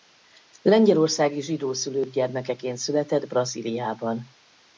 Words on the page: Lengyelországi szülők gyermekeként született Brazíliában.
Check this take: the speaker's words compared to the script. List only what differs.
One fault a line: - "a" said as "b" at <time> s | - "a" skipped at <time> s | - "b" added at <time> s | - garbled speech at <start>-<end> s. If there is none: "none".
- "zsidó" added at 1.4 s